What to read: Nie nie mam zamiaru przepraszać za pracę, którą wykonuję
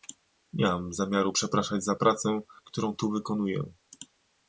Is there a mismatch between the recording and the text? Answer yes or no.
yes